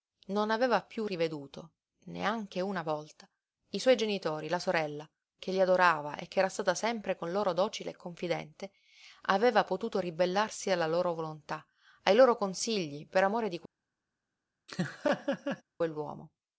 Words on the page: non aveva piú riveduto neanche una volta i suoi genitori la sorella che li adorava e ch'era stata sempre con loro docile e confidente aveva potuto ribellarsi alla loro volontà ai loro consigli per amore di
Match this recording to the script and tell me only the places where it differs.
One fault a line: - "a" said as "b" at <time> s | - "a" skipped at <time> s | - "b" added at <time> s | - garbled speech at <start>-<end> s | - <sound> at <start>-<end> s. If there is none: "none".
- laugh at 14.7-15.6 s